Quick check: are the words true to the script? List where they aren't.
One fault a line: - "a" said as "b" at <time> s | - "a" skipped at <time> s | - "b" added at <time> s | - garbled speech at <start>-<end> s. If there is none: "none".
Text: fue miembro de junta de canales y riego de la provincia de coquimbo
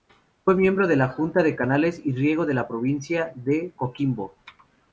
- "la" added at 0.9 s